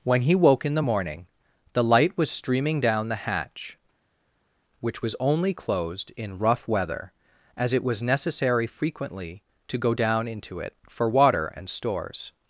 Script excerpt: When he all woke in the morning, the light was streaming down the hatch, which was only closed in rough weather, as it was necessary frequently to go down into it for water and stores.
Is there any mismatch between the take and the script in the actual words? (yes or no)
yes